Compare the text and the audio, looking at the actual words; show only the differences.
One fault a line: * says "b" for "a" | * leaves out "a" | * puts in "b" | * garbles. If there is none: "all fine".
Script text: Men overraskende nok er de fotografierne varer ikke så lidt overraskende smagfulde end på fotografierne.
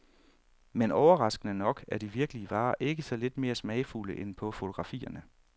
* says "virkelige" for "fotografierne"
* says "mere" for "overraskende"